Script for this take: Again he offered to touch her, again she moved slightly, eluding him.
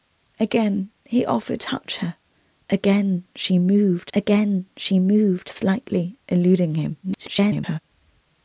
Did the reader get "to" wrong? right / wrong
wrong